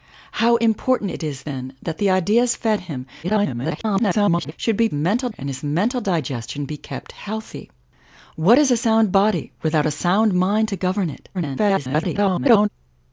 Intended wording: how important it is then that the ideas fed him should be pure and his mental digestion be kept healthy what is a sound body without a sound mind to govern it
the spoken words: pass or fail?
fail